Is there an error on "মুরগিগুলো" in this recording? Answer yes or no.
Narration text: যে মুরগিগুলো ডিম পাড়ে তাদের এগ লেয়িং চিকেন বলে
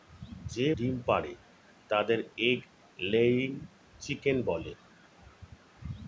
yes